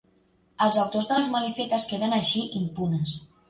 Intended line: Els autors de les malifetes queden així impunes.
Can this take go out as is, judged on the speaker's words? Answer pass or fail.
pass